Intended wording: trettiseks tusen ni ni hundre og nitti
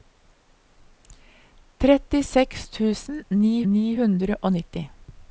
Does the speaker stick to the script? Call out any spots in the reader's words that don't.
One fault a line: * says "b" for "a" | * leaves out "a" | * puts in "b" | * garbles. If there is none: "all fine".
all fine